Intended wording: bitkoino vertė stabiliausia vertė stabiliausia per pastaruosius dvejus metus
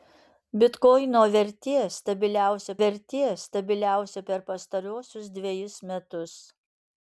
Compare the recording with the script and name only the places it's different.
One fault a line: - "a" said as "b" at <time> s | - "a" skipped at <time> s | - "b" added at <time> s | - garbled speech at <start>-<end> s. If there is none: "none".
none